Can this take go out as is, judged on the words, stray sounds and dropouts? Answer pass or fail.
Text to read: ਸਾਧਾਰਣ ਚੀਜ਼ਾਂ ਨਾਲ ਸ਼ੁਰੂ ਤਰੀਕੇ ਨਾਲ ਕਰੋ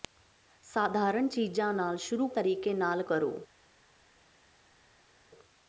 pass